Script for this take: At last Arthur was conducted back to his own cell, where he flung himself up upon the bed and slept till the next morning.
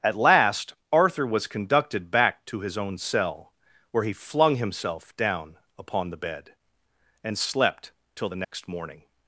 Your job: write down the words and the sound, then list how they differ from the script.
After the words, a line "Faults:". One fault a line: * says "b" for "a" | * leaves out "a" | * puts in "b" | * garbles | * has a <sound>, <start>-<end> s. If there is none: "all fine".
At last Arthur was conducted back to his own cell, where he flung himself down upon the bed and slept till the next morning.
Faults:
* says "down" for "up"
* has a dropout, 8.4-8.5 s